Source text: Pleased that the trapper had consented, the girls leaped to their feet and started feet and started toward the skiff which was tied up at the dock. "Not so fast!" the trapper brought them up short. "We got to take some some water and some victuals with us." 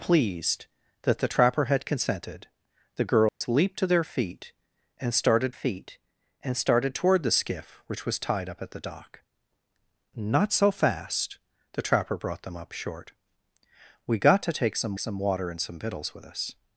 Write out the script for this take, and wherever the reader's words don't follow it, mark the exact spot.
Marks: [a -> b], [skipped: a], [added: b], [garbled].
Pleased that the trapper had consented, the girls leaped to their feet and started feet and started toward the skiff which was tied up at the dock. "Not so fast!" the trapper brought them up short. "We got to take some some water and some victuals with us."